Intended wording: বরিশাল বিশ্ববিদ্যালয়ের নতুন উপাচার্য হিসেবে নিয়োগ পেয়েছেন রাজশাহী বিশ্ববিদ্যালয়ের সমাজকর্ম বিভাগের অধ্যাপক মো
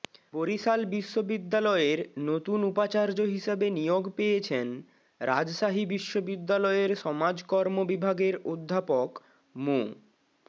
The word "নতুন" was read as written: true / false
true